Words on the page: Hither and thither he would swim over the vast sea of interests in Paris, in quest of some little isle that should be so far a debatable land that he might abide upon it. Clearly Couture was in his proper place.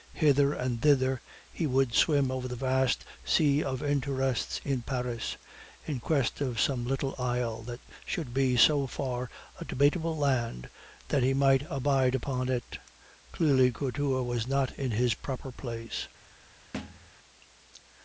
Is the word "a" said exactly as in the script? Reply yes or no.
yes